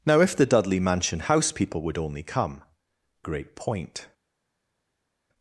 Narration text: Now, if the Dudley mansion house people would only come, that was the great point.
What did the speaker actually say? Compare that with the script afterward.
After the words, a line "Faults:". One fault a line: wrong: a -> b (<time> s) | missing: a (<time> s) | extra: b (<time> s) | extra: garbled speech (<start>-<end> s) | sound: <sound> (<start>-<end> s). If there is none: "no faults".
Now, if the Dudley mansion house people would only come, great point.
Faults:
missing: that was the (2.6 s)